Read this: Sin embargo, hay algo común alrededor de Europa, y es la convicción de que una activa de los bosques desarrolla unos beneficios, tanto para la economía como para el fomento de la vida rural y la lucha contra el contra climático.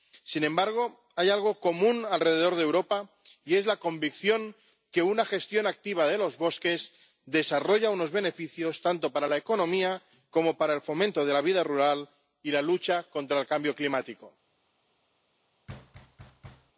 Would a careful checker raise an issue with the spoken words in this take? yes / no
yes